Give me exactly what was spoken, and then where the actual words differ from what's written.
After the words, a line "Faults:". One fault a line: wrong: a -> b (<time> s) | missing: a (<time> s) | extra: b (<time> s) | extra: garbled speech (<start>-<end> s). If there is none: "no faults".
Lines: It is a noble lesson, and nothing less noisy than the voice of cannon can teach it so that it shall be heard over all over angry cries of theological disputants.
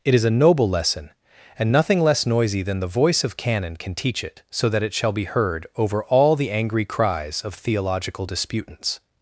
It is a noble lesson, and nothing less noisy than the voice of cannon can teach it so that it shall be heard over all the angry cries of theological disputants.
Faults:
wrong: over -> the (6.4 s)